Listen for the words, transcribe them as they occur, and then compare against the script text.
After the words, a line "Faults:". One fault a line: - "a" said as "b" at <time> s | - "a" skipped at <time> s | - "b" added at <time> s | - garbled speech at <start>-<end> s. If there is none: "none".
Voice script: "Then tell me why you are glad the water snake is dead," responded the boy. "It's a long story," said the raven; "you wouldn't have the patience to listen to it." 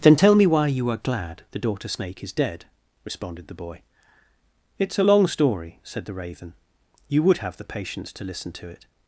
"Then tell me why you are glad the daughter snake is dead," responded the boy. "It's a long story," said the raven; "you would have the patience to listen to it."
Faults:
- "water" said as "daughter" at 1.6 s
- "wouldn't" said as "would" at 7.2 s